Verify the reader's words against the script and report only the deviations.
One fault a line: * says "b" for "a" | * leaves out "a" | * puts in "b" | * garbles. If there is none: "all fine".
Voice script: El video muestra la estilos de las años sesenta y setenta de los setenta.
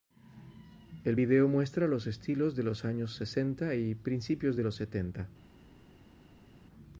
* says "los" for "la"
* says "los" for "las"
* says "principios" for "setenta"